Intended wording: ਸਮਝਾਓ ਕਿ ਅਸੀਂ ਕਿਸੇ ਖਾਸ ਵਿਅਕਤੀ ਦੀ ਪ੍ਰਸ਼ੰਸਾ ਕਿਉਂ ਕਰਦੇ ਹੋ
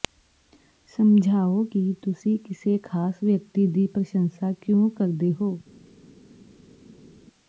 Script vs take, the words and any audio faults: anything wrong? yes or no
yes